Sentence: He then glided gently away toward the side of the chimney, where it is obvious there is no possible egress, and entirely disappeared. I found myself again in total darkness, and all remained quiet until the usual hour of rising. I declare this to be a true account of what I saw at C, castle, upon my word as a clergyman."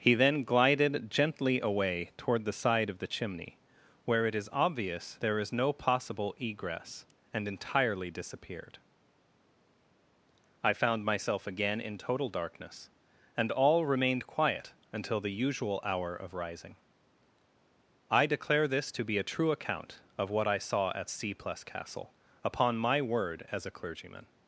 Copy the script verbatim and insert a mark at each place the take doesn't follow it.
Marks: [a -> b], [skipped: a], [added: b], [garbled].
He then glided gently away toward the side of the chimney, where it is obvious there is no possible egress, and entirely disappeared. I found myself again in total darkness, and all remained quiet until the usual hour of rising. I declare this to be a true account of what I saw at C, [added: plus] castle, upon my word as a clergyman."